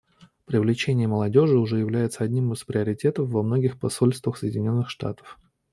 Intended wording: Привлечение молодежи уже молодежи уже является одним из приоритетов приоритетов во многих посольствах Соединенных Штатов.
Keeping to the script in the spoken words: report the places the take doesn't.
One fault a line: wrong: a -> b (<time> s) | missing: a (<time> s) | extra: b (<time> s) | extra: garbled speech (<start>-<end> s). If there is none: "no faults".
missing: молодежи уже (1.8 s)
missing: приоритетов (3.3 s)